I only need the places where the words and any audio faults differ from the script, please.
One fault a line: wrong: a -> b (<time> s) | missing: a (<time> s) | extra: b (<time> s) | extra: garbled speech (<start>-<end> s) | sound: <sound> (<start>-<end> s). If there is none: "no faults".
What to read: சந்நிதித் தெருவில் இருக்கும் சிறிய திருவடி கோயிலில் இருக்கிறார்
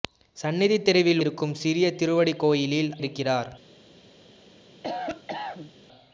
sound: cough (4.8-5.7 s)